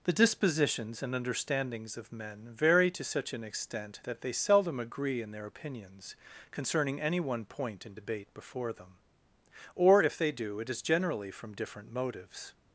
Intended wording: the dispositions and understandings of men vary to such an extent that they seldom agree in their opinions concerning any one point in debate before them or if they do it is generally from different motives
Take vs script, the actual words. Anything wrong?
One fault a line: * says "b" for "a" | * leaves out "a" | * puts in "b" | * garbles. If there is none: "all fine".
all fine